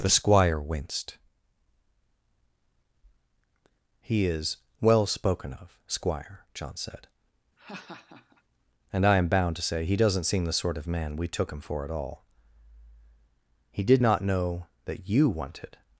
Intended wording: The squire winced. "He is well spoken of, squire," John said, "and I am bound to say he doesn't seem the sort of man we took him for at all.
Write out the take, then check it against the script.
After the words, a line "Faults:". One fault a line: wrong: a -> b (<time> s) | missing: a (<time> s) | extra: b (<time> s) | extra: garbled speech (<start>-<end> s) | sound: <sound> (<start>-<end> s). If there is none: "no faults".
The squire winced. "He is well spoken of, squire," John said, "and I am bound to say he doesn't seem the sort of man we took him for at all. He did not know that you wanted
Faults:
sound: laugh (7.6-8.4 s)
extra: He did not know that you wanted (13.7 s)